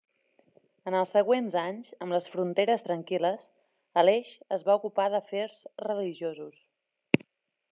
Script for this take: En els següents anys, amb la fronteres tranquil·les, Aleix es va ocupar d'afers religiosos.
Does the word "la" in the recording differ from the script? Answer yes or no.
yes